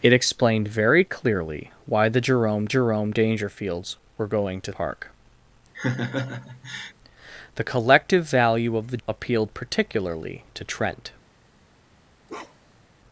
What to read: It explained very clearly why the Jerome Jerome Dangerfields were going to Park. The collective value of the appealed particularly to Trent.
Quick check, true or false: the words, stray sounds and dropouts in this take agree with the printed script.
false